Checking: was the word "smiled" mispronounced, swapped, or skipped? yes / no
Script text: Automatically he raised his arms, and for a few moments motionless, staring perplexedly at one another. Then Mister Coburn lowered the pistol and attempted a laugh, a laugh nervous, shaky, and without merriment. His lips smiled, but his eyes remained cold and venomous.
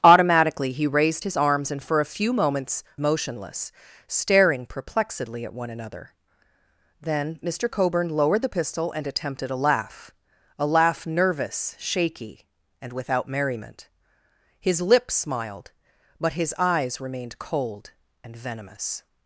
no